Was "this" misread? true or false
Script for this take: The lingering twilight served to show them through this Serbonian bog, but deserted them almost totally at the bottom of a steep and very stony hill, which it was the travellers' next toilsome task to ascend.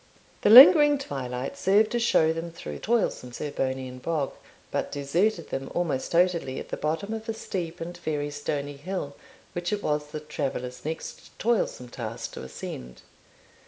true